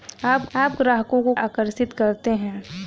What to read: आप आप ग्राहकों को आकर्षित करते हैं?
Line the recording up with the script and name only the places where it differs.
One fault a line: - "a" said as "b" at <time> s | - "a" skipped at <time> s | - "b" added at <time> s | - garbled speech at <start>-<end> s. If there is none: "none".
none